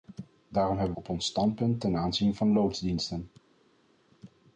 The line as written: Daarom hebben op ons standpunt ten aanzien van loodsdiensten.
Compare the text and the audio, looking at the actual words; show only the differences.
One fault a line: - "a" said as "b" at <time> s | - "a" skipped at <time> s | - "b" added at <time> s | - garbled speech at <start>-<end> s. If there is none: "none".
none